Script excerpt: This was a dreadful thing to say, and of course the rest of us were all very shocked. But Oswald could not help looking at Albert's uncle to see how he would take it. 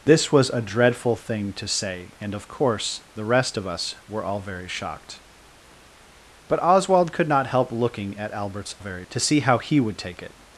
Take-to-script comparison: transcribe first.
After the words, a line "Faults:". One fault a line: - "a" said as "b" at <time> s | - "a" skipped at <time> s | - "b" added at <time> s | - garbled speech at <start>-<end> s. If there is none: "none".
This was a dreadful thing to say, and of course the rest of us were all very shocked. But Oswald could not help looking at Albert's very to see how he would take it.
Faults:
- "uncle" said as "very" at 8.8 s